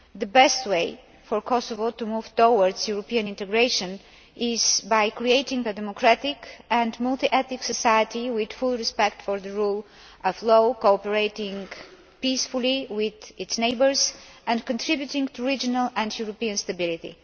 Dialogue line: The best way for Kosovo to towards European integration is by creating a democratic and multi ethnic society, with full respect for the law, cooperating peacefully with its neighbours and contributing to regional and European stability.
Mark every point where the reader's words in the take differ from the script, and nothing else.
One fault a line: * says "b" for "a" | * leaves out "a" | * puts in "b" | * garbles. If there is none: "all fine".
* puts in "move"
* puts in "rule of"